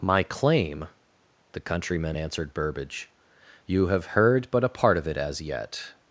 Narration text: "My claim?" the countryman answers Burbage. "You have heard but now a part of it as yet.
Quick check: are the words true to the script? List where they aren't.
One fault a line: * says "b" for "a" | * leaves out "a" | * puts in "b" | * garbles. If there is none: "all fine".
* says "answered" for "answers"
* leaves out "now"